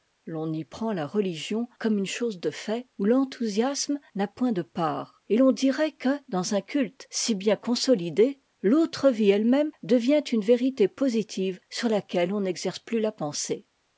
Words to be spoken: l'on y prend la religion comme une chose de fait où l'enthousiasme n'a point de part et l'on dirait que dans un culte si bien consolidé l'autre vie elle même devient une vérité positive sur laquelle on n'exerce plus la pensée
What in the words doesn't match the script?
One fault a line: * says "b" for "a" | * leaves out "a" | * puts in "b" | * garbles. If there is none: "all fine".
all fine